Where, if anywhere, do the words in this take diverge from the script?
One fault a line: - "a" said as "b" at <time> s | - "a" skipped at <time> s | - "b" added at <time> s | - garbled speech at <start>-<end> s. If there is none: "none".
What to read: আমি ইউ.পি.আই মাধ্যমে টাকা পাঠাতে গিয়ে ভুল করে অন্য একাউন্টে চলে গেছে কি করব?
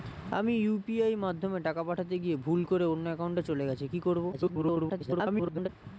- garbled speech at 4.3-5.7 s